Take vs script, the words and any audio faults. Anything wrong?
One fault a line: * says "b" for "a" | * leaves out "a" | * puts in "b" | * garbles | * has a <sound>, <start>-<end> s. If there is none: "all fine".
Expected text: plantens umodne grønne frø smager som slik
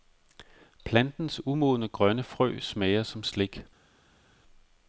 all fine